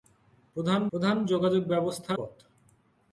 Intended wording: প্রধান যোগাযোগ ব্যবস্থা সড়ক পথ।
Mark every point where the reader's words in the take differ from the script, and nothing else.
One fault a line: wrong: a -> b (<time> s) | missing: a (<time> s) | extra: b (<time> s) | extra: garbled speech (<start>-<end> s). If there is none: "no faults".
extra: প্রধান (0.9 s)
missing: সড়ক (2.1 s)